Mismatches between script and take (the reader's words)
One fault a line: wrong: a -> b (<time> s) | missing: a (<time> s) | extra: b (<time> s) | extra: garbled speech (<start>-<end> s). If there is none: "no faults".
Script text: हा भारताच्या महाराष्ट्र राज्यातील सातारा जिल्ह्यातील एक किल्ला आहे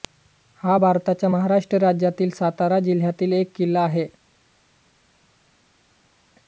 no faults